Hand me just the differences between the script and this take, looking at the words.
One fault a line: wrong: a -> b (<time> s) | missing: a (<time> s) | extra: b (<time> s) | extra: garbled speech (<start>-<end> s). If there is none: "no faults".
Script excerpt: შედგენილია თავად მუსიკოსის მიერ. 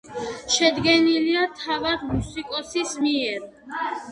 no faults